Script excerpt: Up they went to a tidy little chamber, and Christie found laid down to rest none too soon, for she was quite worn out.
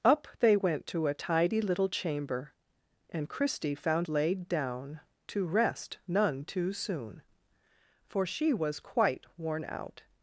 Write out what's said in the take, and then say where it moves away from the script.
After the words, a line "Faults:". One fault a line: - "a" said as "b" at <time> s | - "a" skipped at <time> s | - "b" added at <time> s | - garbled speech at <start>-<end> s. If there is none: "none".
Up they went to a tidy little chamber, and Christie found laid down to rest none too soon, for she was quite worn out.
Faults:
none